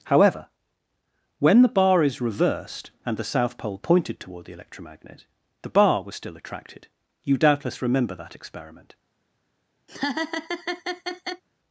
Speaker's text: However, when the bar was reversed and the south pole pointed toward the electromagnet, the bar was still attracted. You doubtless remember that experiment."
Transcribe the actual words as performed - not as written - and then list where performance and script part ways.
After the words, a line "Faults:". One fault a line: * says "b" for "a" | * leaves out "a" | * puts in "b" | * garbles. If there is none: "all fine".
However, when the bar is reversed and the south pole pointed toward the electromagnet, the bar was still attracted. You doubtless remember that experiment."
Faults:
* says "is" for "was"